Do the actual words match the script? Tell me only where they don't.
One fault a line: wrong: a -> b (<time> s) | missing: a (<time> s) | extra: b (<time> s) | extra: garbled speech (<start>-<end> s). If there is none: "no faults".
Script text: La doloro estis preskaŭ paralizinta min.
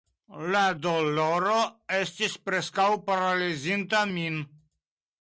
no faults